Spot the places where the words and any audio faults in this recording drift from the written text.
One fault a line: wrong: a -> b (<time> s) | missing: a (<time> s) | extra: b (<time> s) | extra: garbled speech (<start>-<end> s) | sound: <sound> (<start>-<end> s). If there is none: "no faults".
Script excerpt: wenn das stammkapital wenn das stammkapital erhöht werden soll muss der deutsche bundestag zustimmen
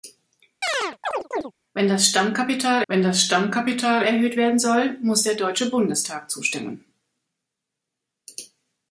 sound: chirp (0.6-1.5 s)